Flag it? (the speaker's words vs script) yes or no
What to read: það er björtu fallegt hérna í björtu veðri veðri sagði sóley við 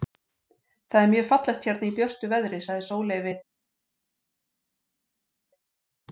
yes